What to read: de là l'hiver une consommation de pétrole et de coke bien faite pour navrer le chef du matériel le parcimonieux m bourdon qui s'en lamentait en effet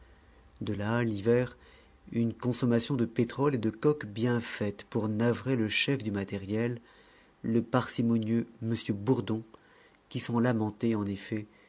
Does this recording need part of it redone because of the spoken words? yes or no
no